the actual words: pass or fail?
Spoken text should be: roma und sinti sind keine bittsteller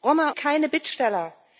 fail